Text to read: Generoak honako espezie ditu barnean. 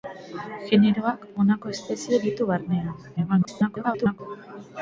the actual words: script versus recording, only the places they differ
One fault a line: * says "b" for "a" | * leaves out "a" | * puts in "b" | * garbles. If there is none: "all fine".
* garbles